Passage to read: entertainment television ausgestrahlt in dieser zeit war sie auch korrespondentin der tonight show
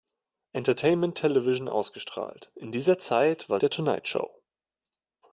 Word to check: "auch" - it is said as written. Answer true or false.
false